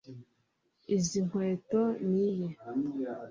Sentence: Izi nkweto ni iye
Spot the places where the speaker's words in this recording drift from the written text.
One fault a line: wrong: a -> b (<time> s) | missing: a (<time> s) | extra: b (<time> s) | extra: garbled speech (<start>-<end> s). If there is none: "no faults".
no faults